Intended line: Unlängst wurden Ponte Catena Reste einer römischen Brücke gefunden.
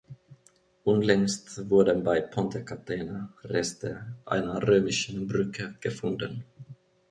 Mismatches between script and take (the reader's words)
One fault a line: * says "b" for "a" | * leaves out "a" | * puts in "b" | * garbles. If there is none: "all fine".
* puts in "bei"